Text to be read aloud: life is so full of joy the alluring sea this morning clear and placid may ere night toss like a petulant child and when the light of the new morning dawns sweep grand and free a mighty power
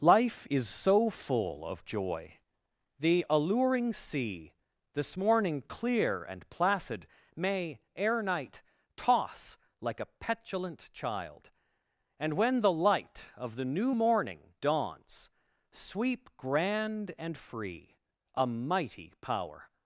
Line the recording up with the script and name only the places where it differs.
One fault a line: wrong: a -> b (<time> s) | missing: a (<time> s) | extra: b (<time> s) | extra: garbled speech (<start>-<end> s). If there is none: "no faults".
no faults